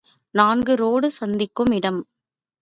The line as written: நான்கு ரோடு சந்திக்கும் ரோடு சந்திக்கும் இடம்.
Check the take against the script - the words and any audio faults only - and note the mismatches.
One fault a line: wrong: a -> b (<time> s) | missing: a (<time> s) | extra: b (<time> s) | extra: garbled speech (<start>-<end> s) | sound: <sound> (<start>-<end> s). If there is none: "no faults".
missing: ரோடு சந்திக்கும் (1.7 s)